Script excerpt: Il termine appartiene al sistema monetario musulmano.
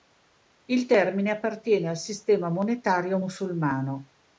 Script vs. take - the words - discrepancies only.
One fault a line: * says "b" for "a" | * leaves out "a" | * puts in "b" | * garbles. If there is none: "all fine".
all fine